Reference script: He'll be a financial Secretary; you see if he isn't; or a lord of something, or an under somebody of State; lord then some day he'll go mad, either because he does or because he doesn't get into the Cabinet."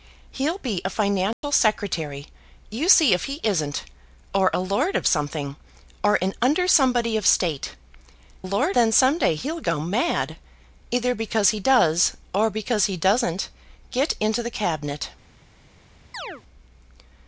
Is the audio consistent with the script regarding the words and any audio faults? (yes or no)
no